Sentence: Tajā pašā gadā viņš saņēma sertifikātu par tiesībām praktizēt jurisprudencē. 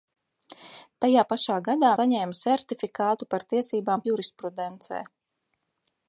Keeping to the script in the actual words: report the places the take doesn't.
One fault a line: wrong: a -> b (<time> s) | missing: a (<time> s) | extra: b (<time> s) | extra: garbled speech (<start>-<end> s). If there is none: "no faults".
missing: viņš (1.9 s)
missing: praktizēt (4.0 s)